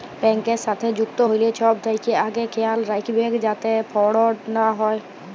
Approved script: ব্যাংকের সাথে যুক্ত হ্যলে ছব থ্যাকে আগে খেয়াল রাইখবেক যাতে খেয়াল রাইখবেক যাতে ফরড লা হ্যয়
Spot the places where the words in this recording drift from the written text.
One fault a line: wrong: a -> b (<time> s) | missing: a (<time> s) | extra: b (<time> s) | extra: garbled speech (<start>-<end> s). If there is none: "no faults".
missing: খেয়াল রাইখবেক যাতে (3.7 s)